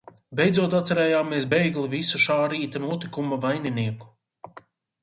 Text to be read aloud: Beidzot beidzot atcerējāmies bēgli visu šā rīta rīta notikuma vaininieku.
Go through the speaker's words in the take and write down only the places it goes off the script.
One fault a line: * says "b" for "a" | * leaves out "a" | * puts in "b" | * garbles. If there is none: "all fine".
* leaves out "beidzot"
* leaves out "rīta"